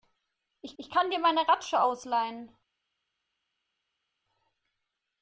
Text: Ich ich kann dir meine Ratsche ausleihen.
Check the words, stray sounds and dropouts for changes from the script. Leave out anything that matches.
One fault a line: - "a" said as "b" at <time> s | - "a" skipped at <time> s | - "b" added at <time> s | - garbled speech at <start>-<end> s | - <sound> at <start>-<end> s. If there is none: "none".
none